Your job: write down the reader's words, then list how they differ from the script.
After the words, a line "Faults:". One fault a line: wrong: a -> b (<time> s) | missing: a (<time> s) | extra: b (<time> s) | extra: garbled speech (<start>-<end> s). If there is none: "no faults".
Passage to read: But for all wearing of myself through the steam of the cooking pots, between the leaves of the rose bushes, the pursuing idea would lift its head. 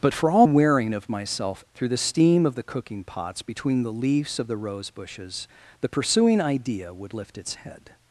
But for all wearing of myself through the steam of the cooking pots, between the leaves of the rose bushes, the pursuing idea would lift its head.
Faults:
no faults